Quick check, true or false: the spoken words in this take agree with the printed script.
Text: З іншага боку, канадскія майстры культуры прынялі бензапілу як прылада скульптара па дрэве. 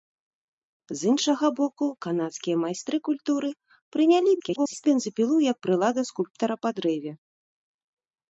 false